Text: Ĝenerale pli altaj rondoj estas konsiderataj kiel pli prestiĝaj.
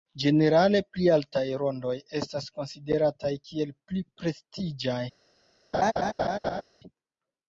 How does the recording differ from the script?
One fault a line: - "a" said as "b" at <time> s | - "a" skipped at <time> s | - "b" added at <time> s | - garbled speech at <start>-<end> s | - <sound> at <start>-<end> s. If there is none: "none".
- laugh at 5.7-6.6 s